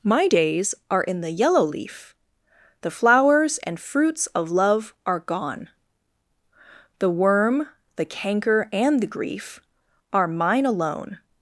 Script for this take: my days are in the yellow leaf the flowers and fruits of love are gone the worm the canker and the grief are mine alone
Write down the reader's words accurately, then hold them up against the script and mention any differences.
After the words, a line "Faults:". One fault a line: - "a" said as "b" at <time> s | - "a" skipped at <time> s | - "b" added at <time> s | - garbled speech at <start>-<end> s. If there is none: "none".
my days are in the yellow leaf the flowers and fruits of love are gone the worm the canker and the grief are mine alone
Faults:
none